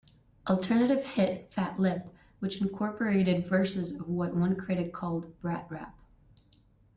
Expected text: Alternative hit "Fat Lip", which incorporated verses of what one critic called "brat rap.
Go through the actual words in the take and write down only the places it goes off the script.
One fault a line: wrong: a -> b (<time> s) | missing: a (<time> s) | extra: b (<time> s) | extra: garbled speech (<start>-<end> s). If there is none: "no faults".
no faults